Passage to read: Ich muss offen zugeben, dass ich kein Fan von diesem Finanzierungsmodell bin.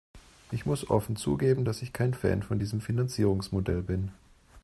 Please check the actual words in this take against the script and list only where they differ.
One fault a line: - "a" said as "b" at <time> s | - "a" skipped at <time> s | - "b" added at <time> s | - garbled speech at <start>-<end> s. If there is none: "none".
none